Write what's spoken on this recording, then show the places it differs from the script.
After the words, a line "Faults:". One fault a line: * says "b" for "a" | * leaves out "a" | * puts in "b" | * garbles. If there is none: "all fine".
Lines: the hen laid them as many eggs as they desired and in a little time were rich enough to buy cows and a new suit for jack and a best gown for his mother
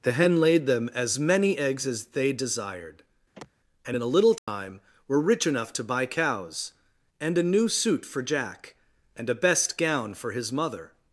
the hen laid them as many eggs as they desired and in a little time were rich enough to buy cows and a new suit for jack and a best gown for his mother
Faults:
all fine